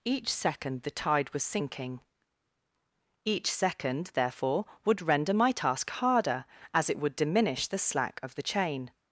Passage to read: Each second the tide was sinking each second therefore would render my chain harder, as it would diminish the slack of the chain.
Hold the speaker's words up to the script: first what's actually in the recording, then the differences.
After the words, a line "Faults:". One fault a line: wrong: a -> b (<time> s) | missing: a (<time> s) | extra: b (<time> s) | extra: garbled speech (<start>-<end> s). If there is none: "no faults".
Each second the tide was sinking each second therefore would render my task harder, as it would diminish the slack of the chain.
Faults:
wrong: chain -> task (5.5 s)